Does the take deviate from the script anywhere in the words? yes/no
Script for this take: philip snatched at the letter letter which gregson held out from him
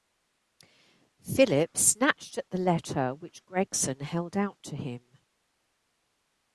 yes